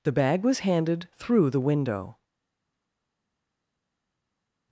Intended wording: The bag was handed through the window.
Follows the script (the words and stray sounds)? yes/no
yes